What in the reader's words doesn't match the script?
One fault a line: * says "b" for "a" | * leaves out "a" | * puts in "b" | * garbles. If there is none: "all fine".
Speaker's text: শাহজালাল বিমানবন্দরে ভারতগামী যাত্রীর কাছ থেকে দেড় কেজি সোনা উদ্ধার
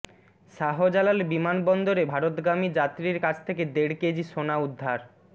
all fine